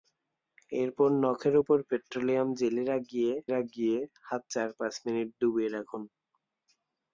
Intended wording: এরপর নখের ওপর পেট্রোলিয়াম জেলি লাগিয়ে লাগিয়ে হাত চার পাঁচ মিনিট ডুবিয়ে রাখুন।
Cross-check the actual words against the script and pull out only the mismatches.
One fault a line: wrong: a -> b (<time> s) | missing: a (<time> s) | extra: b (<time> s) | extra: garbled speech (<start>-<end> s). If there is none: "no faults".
no faults